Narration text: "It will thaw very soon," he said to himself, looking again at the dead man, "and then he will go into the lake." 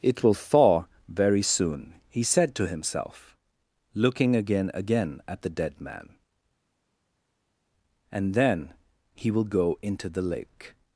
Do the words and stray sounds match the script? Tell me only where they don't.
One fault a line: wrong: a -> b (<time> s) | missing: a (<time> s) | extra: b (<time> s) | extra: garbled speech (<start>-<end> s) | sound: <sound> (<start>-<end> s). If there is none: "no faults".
extra: again (4.7 s)